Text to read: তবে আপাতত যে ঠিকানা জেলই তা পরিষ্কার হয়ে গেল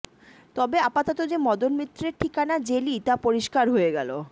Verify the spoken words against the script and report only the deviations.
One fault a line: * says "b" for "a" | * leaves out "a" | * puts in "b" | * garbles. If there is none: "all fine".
* puts in "মদন মিত্রের"